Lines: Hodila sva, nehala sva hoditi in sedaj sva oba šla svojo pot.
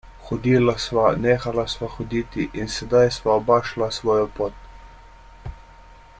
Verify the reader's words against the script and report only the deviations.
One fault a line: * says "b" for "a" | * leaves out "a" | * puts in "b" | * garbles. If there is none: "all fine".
all fine